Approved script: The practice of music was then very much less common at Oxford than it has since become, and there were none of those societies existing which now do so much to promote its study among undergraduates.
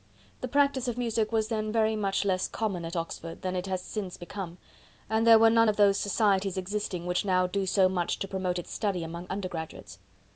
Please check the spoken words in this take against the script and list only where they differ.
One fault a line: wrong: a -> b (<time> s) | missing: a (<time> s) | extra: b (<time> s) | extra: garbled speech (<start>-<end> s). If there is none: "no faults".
no faults